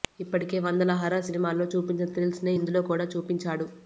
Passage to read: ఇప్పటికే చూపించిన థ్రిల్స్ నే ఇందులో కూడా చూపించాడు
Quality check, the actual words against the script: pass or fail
fail